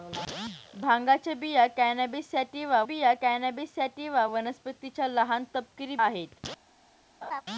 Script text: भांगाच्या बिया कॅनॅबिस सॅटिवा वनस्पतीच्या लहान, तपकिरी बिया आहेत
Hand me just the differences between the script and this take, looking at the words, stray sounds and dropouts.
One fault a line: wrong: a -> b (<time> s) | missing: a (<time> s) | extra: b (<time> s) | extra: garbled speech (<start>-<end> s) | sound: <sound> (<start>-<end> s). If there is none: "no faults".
extra: बिया कॅनॅबिस सॅटिवा (2.8 s)
missing: बिया (6.0 s)
sound: laugh (7.2-7.4 s)